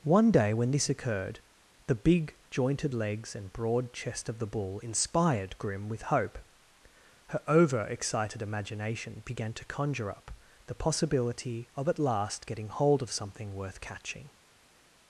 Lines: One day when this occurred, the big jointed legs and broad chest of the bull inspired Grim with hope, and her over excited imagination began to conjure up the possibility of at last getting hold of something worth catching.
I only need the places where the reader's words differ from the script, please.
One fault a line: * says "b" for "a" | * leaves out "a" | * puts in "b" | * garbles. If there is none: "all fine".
* leaves out "and"